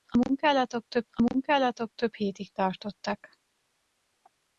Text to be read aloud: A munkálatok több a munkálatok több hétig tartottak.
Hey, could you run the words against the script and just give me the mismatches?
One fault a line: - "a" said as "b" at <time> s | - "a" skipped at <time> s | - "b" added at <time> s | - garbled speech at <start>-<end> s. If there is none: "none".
none